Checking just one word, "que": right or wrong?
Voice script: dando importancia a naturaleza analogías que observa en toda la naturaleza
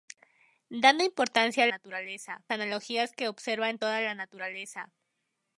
right